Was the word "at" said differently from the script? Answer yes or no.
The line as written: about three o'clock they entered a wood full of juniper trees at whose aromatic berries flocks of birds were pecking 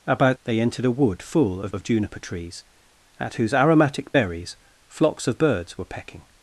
no